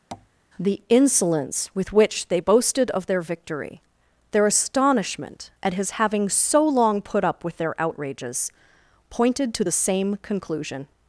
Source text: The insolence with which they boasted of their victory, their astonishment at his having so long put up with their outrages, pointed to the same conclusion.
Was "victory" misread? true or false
false